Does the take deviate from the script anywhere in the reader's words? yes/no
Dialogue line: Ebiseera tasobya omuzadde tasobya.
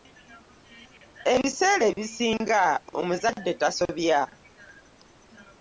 yes